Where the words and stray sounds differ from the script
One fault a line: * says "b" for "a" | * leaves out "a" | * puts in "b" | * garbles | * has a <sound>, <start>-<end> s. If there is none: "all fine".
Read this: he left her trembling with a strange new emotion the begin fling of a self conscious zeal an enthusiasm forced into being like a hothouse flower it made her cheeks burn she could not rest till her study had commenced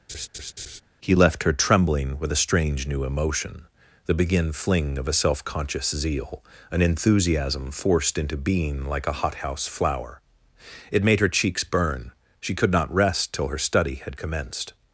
* has a laugh, 0.1-0.8 s